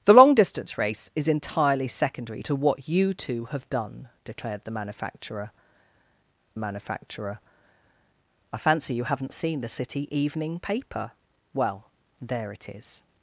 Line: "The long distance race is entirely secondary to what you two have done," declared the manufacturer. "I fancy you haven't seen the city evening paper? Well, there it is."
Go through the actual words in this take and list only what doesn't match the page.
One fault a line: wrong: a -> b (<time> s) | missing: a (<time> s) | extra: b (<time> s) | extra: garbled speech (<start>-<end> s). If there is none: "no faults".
extra: manufacturer (6.6 s)